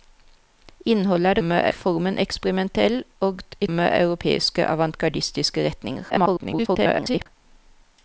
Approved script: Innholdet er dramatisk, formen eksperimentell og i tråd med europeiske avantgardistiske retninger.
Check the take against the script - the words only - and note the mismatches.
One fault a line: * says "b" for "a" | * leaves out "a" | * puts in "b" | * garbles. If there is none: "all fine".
* says "med" for "dramatisk"
* leaves out "tråd"
* garbles